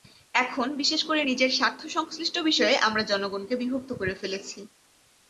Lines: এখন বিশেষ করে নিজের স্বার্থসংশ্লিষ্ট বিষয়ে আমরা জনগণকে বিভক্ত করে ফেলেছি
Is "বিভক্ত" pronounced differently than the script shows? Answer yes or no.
no